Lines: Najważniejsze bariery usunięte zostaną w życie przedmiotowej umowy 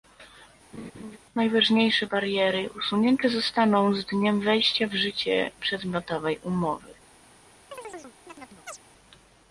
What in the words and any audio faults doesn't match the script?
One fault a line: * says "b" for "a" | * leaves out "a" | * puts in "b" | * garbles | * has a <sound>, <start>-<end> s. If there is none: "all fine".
* has a laugh, 0.7-1.2 s
* puts in "z dniem wejścia"
* has a chirp, 7.7-8.8 s